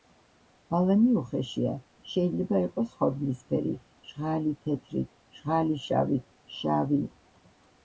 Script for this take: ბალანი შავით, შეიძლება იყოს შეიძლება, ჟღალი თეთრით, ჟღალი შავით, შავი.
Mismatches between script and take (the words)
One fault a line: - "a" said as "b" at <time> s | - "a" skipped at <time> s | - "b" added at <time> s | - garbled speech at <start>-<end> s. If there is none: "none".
- "შავით" said as "უხეშია" at 1.2 s
- "შეიძლება" said as "ხორბლისფერი" at 3.0 s